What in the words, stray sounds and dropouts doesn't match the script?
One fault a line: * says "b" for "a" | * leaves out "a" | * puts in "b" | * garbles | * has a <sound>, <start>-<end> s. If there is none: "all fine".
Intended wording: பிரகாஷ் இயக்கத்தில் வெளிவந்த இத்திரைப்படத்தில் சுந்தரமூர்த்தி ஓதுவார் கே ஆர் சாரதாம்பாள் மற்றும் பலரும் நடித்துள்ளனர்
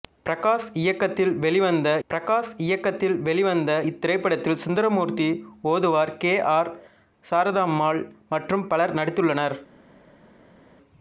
* puts in "பிரகாஷ் இயக்கத்தில் வெளிவந்த"